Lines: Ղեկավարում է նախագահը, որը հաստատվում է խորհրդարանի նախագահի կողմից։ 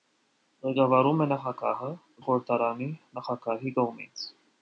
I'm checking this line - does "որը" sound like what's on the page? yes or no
no